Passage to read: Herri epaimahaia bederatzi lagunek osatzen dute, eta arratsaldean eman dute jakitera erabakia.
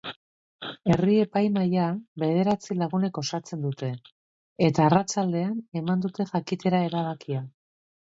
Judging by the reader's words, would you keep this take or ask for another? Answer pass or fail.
pass